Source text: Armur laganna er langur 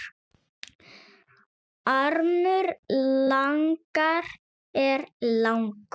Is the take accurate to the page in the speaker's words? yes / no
yes